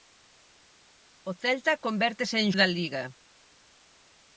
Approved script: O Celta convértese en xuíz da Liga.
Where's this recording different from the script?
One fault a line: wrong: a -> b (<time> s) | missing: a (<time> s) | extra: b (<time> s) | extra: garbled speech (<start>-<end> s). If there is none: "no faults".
missing: xuíz (2.5 s)